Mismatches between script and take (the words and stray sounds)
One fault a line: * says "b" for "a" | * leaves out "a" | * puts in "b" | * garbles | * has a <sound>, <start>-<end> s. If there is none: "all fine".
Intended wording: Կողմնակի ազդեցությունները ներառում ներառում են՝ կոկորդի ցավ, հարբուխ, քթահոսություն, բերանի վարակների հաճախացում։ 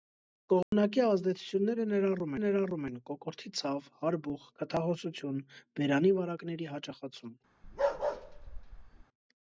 * has a dropout, 0.6-0.7 s
* has a bark, 7.6-9.0 s